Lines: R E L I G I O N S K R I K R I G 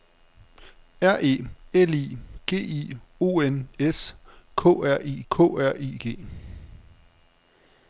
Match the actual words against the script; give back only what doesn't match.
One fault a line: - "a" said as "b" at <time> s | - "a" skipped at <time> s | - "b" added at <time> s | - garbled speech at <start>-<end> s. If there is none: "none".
none